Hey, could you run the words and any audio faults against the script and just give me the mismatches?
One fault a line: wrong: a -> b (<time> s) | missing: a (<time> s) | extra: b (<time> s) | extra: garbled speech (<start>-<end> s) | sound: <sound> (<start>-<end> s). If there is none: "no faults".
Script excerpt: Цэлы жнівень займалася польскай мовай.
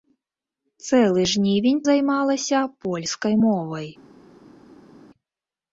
no faults